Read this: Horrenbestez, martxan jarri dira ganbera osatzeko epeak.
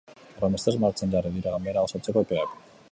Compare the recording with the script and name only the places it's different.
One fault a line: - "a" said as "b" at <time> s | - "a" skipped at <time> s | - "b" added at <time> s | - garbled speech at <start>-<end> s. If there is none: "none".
none